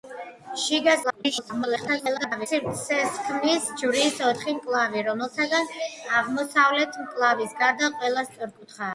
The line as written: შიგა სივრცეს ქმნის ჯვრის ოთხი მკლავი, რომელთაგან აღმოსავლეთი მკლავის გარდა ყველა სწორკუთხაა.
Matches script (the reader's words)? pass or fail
fail